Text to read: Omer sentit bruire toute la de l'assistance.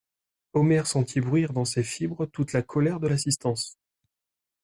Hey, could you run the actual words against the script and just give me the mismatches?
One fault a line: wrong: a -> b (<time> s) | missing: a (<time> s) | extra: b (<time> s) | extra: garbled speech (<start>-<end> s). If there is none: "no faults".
extra: dans ses fibres (1.5 s)
extra: colère (2.6 s)